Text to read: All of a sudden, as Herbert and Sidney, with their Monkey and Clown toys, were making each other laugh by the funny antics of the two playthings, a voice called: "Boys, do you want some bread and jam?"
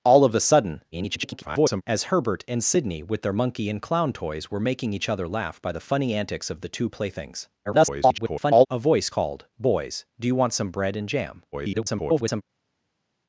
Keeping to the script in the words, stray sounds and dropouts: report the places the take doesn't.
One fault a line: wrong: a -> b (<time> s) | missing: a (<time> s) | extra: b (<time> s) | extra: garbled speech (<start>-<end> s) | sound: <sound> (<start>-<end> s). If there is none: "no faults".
extra: garbled speech (0.9-1.8 s)
extra: garbled speech (7.7-8.7 s)
extra: garbled speech (11.5-12.4 s)